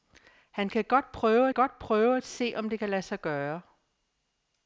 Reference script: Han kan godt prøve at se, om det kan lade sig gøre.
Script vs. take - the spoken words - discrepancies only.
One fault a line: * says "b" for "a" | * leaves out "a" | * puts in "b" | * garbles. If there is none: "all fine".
* puts in "godt prøve"